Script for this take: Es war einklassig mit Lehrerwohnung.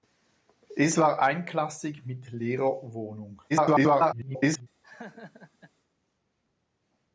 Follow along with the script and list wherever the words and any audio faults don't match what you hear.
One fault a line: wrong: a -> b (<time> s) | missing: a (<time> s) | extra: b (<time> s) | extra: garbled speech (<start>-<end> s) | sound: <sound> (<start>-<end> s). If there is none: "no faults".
extra: garbled speech (3.5-4.7 s)
sound: laugh (4.8-5.7 s)